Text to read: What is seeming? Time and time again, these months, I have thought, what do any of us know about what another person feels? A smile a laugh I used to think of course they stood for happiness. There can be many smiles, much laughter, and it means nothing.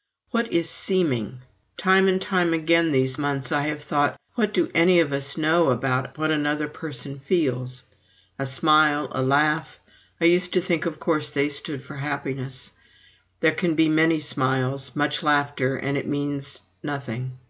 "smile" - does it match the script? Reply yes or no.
yes